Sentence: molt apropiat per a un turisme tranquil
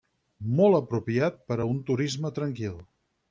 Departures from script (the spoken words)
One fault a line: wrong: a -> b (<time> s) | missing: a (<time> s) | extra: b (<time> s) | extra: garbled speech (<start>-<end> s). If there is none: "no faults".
no faults